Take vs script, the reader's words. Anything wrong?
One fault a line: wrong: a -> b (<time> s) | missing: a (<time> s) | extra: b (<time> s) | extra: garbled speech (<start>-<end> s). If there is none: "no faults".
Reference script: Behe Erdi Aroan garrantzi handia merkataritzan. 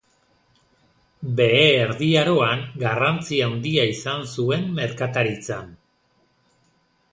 extra: izan zuen (3.9 s)